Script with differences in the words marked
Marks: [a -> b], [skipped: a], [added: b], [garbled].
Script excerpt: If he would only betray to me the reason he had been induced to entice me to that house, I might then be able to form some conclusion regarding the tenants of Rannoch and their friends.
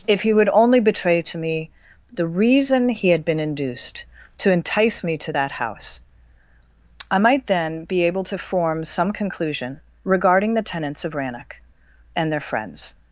If he would only betray to me the reason he had been induced to entice me to that house, I might then be able to form some conclusion regarding the tenants of Rannoch and their friends.